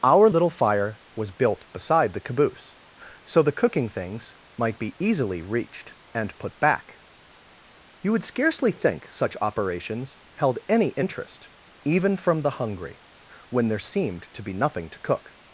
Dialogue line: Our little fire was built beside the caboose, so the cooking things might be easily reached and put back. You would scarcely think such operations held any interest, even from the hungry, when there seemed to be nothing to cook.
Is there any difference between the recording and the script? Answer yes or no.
no